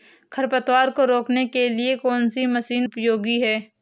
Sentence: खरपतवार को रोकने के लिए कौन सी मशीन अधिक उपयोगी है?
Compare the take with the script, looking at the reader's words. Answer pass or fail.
fail